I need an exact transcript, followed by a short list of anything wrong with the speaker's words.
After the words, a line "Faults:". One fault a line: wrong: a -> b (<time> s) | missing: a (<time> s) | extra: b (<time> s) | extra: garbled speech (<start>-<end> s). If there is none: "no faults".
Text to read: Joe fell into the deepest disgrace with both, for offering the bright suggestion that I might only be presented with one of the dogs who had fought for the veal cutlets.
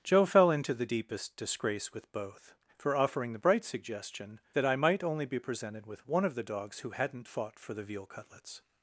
Joe fell into the deepest disgrace with both, for offering the bright suggestion that I might only be presented with one of the dogs who hadn't fought for the veal cutlets.
Faults:
wrong: had -> hadn't (6.9 s)